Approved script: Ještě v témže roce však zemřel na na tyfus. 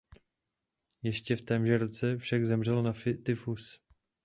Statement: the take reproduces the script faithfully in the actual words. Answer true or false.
false